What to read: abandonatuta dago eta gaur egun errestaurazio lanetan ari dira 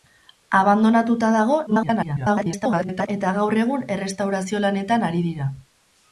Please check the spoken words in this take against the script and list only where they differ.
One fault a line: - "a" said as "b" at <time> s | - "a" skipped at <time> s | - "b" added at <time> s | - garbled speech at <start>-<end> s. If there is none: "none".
- garbled speech at 1.7-3.1 s